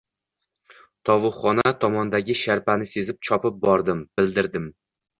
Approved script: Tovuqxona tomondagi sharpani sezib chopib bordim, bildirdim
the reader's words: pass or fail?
pass